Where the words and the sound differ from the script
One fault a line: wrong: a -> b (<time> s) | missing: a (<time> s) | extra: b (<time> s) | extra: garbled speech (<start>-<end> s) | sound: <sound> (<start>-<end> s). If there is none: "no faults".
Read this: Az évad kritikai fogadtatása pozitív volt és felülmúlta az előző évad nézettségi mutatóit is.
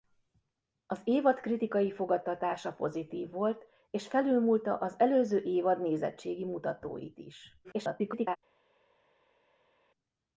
extra: garbled speech (7.6-8.4 s)